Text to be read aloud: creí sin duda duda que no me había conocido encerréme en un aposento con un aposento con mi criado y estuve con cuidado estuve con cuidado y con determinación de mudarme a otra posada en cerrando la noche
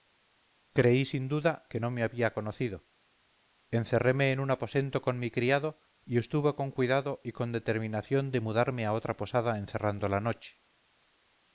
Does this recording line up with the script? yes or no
no